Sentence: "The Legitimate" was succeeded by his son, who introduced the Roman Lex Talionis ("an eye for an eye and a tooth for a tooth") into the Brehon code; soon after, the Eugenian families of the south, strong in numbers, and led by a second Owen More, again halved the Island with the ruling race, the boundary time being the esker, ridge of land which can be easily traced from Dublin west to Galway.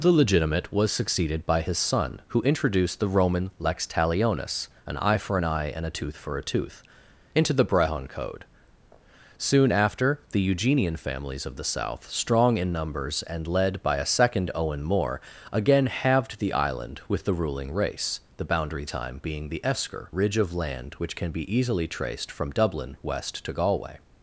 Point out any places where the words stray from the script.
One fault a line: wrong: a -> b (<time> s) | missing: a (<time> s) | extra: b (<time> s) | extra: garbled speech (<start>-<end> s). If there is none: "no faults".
no faults